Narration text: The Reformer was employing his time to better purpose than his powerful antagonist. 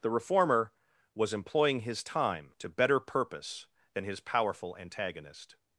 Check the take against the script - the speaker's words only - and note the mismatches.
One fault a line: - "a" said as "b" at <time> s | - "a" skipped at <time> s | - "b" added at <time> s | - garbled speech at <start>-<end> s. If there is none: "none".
none